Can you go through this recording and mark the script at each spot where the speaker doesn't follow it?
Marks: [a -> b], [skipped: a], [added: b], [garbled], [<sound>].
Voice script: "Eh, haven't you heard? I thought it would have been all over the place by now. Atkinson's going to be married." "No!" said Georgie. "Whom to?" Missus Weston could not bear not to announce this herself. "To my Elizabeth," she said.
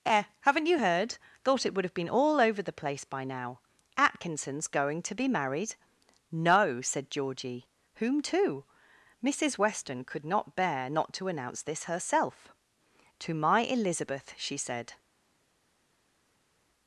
"Eh, haven't you heard? [skipped: I] thought it would have been all over the place by now. Atkinson's going to be married." "No!" said Georgie. "Whom to?" Missus Weston could not bear not to announce this herself. "To my Elizabeth," she said.